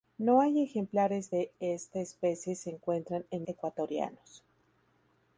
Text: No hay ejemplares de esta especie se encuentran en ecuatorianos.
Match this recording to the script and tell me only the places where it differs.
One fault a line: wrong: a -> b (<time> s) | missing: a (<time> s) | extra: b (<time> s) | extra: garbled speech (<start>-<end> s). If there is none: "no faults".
no faults